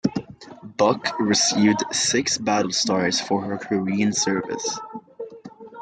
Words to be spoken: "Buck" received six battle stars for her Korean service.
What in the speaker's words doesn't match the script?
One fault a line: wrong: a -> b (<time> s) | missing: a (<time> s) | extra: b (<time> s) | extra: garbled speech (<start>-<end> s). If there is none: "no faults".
no faults